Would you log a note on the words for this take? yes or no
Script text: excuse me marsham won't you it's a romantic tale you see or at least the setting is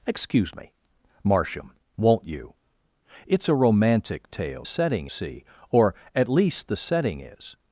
yes